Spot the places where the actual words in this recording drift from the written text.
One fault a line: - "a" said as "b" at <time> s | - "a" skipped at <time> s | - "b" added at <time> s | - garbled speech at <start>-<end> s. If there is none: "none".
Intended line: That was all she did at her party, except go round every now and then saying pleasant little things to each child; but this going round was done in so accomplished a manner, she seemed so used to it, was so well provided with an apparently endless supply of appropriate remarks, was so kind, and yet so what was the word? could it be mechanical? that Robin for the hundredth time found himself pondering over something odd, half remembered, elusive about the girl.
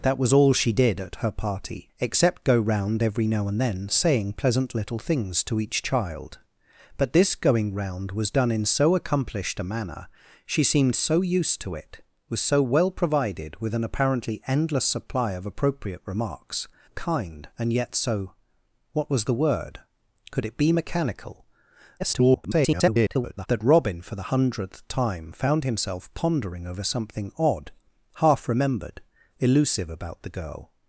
- "was so" skipped at 16.7 s
- garbled speech at 22.0-23.5 s